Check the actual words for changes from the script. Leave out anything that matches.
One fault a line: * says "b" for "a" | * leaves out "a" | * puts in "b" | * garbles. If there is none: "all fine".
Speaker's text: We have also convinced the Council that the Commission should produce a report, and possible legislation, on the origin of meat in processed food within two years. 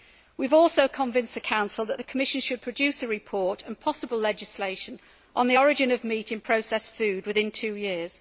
all fine